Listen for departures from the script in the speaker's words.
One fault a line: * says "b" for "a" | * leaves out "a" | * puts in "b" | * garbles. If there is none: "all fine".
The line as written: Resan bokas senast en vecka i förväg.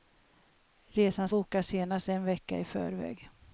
all fine